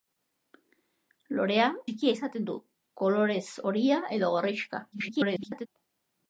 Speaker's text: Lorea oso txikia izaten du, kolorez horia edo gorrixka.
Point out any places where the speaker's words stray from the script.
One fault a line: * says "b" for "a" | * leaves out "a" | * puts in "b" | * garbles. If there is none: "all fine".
* leaves out "oso"
* garbles